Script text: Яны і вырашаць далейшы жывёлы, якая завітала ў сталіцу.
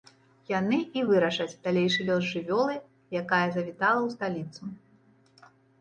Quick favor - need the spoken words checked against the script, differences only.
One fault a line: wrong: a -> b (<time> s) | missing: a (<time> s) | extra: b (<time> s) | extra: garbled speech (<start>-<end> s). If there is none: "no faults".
extra: лёс (2.1 s)